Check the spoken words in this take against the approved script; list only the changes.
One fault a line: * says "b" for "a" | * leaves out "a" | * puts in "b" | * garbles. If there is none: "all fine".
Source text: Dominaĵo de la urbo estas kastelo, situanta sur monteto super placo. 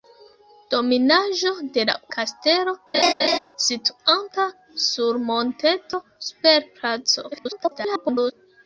* leaves out "urbo estas"
* garbles